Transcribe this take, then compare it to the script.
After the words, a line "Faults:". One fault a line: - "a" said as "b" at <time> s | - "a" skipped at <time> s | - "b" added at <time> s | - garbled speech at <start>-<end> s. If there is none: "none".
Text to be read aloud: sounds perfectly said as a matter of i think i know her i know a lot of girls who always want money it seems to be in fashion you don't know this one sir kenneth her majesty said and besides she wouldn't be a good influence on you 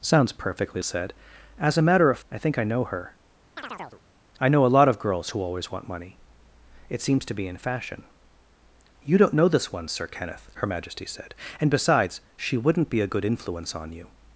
sounds perfectly said as a matter of i think i know her i know a lot of girls who always want money it seems to be in fashion you don't know this one sir kenneth her majesty said and besides she wouldn't be a good influence on you
Faults:
none